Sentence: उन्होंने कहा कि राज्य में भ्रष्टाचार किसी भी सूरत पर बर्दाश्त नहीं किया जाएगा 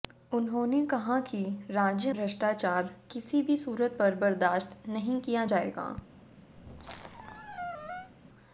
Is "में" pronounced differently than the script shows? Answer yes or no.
yes